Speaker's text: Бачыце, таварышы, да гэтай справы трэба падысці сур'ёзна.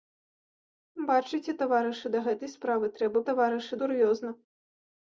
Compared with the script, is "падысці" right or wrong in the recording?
wrong